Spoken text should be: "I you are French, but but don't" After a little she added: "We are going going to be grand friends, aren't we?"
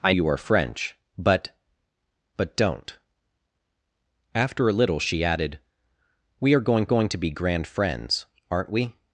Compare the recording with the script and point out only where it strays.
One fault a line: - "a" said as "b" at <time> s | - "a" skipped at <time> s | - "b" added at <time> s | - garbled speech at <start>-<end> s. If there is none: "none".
none